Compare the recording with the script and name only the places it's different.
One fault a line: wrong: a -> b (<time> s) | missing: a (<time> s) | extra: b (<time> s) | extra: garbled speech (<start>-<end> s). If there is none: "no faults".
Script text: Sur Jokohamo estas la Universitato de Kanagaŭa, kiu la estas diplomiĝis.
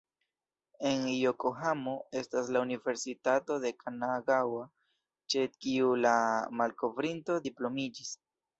wrong: Sur -> En (0.9 s)
extra: ĉe (5.3 s)
wrong: estas -> malkovrinto (6.6 s)